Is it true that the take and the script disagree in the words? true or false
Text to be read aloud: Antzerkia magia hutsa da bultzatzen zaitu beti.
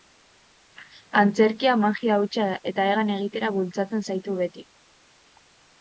true